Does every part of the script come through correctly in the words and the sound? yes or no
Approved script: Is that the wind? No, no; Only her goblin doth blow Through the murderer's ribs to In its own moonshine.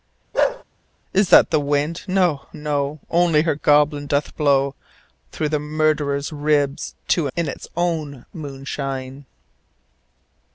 no